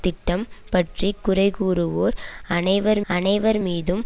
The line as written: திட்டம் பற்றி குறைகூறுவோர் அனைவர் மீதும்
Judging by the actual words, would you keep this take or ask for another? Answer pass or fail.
fail